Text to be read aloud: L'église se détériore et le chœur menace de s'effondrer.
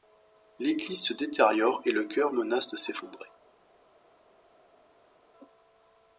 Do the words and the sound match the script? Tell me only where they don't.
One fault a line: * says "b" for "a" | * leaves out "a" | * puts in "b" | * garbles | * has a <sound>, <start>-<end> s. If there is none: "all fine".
all fine